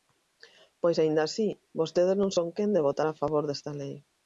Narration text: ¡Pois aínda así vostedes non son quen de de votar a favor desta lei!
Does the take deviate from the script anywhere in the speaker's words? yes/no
yes